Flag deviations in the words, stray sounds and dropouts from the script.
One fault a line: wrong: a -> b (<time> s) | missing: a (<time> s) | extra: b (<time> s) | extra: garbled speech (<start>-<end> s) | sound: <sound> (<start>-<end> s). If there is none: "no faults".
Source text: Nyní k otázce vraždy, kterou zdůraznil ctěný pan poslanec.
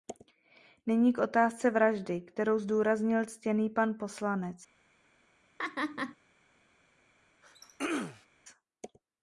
sound: laugh (5.6-6.2 s)
sound: throat clearing (7.4-8.3 s)